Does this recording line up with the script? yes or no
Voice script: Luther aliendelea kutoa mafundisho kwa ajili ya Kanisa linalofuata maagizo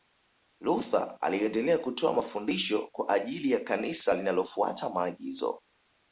yes